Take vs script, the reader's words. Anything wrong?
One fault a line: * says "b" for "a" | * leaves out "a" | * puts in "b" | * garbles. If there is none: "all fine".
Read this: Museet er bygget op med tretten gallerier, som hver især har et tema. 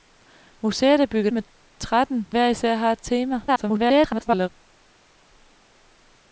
* leaves out "op"
* leaves out "gallerier som"
* garbles